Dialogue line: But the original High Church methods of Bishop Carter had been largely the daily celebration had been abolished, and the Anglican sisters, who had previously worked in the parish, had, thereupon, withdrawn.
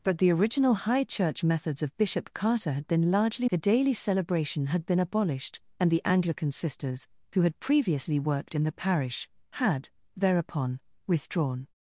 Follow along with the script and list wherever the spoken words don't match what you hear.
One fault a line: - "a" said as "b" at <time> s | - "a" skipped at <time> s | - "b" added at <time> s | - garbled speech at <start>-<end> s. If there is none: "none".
none